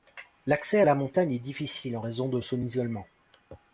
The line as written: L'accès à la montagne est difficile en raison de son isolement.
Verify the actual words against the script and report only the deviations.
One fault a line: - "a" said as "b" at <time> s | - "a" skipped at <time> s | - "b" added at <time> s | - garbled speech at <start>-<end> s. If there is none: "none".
none